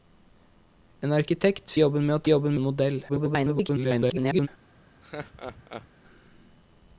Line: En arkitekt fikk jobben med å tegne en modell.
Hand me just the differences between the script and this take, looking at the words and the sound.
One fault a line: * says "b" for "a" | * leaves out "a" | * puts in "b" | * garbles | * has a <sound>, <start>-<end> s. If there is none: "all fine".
* leaves out "fikk"
* says "jobben" for "tegne"
* garbles
* has a laugh, 5.0-5.9 s